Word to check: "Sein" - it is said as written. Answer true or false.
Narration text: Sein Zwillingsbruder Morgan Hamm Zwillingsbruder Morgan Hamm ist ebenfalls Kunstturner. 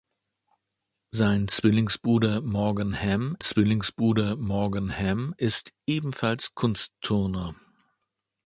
true